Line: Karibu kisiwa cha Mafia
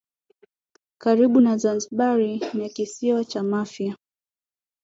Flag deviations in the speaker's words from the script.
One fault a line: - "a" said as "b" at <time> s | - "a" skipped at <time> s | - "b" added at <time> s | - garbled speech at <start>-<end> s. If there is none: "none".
- "na Zanzibar ni" added at 1.4 s